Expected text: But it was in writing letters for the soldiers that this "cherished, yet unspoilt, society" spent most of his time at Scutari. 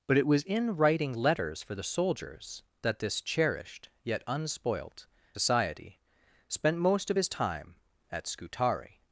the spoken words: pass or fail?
pass